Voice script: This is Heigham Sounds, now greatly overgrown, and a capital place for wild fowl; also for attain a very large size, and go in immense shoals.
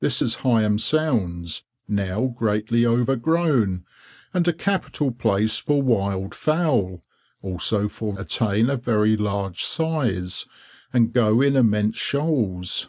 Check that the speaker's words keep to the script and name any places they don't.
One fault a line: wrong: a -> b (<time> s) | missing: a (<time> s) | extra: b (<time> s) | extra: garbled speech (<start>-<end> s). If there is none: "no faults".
no faults